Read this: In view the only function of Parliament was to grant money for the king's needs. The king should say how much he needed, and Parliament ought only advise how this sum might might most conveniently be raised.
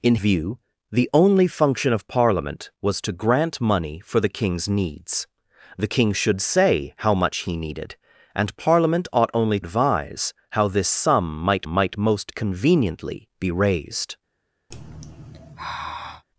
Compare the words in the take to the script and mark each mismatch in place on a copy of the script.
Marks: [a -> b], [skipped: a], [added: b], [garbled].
In view the only function of Parliament was to grant money for the king's needs. The king should say how much he needed, and Parliament ought only advise how this sum might might most conveniently be raised.